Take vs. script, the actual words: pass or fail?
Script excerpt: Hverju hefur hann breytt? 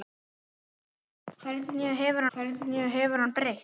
fail